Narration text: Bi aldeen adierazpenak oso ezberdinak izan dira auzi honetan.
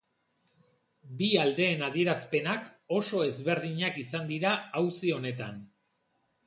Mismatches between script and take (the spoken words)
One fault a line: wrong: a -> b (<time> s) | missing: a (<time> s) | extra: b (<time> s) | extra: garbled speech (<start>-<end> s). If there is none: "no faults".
no faults